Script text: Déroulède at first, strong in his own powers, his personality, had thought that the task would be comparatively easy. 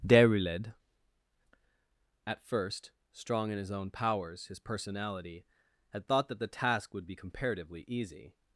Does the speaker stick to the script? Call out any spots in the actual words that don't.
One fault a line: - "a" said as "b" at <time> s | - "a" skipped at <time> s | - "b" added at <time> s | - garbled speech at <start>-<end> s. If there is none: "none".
none